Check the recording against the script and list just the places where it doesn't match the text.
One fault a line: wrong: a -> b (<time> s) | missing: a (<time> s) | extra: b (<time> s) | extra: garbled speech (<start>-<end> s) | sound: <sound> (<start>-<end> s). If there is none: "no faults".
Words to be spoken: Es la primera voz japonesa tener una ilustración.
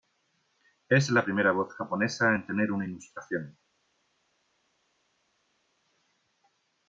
extra: en (2.3 s)